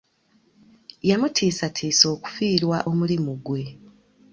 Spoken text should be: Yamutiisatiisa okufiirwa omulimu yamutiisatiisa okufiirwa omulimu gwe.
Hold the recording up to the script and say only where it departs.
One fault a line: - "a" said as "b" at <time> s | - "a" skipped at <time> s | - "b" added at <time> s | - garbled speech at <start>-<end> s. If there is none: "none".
- "yamutiisatiisa okufiirwa omulimu" skipped at 3.3 s